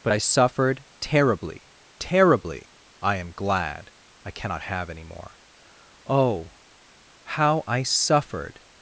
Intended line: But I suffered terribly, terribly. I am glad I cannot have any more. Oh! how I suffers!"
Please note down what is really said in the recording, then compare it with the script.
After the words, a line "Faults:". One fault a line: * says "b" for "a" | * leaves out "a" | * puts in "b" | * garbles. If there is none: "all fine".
But I suffered terribly, terribly. I am glad I cannot have any more. Oh! how I suffered!"
Faults:
* says "suffered" for "suffers"